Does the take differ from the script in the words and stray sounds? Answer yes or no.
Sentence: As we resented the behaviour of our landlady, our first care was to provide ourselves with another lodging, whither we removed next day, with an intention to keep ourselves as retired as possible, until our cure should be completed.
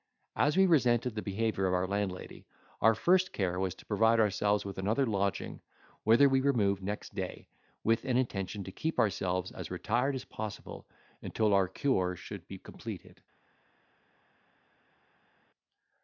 no